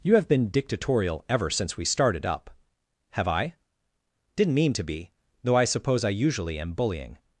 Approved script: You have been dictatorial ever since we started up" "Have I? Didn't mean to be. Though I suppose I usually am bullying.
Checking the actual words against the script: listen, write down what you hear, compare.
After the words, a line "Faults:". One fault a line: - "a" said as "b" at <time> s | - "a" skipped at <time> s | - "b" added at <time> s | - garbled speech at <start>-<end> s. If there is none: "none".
You have been dictatorial ever since we started up" "Have I? Didn't mean to be. Though I suppose I usually am bullying.
Faults:
none